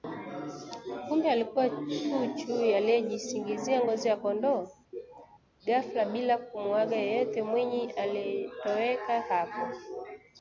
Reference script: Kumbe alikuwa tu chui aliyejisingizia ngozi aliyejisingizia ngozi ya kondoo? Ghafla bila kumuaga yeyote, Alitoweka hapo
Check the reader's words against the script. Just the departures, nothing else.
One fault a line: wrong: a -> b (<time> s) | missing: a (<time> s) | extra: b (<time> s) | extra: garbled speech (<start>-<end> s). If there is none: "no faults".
missing: aliyejisingizia ngozi (4.1 s)
extra: Mwinyi (7.4 s)